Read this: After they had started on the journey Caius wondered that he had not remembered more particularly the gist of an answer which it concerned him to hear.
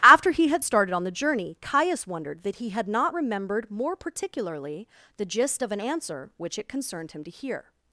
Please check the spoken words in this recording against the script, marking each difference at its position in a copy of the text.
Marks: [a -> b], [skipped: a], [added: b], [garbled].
After [they -> he] had started on the journey Caius wondered that he had not remembered more particularly the gist of an answer which it concerned him to hear.